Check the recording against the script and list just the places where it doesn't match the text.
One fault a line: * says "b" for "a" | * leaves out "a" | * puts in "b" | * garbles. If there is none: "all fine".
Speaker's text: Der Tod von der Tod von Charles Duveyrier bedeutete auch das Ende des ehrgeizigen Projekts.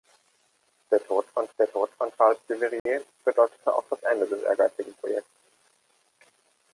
all fine